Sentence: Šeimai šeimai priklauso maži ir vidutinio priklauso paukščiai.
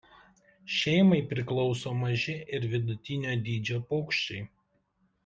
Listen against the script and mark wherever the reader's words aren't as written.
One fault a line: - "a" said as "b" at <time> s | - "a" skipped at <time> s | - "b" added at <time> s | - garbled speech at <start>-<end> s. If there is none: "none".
- "šeimai" skipped at 1.2 s
- "priklauso" said as "dydžio" at 3.5 s